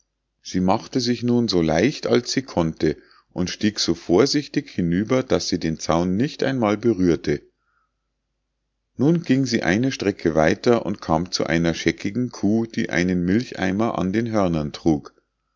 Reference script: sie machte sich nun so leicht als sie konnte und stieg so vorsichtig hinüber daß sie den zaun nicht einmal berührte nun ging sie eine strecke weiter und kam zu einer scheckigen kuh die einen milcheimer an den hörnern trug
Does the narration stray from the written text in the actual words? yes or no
no